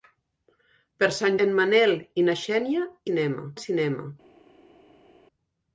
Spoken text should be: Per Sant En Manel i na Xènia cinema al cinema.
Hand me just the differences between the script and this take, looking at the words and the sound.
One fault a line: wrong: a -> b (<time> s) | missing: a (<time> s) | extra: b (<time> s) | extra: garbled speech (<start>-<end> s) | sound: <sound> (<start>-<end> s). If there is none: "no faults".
no faults